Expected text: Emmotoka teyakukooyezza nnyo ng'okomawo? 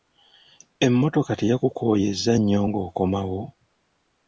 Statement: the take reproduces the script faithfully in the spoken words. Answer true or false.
true